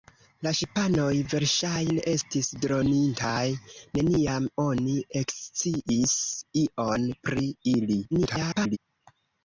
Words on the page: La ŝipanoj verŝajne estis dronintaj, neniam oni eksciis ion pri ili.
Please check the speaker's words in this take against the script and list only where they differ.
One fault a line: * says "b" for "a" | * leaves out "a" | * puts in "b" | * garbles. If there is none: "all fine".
* garbles